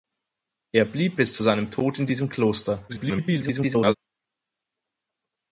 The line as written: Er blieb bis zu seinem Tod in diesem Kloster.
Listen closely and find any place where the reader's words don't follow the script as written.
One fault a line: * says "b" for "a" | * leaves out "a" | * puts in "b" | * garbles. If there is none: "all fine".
* garbles